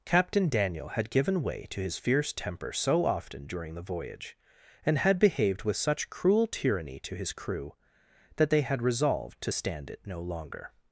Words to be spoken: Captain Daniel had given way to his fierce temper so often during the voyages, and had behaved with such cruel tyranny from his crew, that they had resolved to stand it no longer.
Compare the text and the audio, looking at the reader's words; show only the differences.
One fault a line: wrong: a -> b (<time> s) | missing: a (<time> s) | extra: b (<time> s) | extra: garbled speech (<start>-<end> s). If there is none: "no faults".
wrong: voyages -> voyage (3.8 s)
wrong: from -> to (7.0 s)